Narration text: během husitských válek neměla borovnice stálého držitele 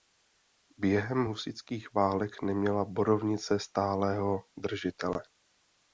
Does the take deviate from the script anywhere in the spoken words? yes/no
no